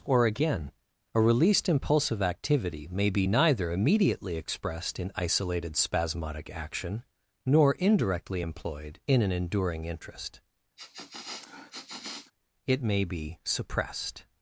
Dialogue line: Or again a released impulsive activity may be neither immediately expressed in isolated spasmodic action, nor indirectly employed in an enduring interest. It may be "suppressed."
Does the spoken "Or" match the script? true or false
true